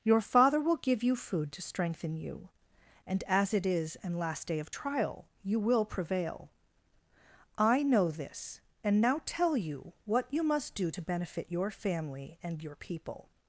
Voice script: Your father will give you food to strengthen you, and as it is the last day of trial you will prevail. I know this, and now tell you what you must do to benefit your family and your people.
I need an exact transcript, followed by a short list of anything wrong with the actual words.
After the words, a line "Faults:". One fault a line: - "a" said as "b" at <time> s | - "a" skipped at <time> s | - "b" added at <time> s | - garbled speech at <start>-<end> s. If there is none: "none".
Your father will give you food to strengthen you, and as it is an last day of trial you will prevail. I know this, and now tell you what you must do to benefit your family and your people.
Faults:
- "the" said as "an" at 4.0 s